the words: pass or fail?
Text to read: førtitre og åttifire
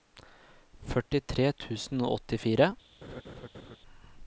fail